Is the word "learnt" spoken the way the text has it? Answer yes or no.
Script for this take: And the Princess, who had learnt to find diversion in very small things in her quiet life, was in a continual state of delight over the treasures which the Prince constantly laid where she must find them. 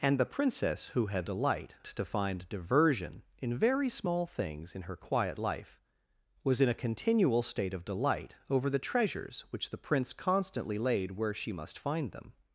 no